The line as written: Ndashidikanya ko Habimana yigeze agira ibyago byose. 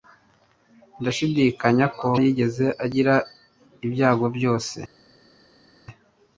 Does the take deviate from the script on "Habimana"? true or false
true